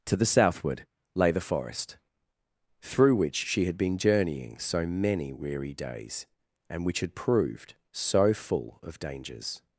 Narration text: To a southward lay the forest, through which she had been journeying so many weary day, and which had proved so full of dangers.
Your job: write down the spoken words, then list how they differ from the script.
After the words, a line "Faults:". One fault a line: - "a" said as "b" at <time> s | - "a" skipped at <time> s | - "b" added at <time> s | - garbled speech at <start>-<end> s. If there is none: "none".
To the southward lay the forest, through which she had been journeying so many weary days, and which had proved so full of dangers.
Faults:
- "a" said as "the" at 0.1 s
- "day" said as "days" at 5.7 s